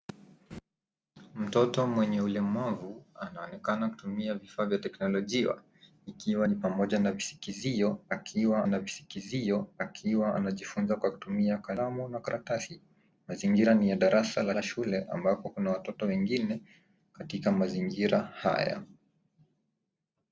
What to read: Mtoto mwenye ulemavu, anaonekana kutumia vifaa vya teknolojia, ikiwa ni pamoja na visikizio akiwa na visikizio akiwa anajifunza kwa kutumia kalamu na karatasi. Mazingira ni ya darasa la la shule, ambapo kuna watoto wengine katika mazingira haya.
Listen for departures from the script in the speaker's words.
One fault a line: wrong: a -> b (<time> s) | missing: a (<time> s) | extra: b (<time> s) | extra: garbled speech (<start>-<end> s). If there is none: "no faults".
no faults